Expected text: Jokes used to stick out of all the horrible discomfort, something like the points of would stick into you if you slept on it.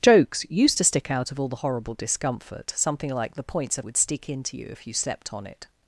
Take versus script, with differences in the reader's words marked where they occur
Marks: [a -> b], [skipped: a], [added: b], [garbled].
Jokes used to stick out of all the horrible discomfort, something like the points of would stick into you if you slept on it.